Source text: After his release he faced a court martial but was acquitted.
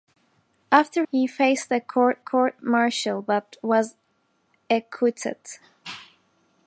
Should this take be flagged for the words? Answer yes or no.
yes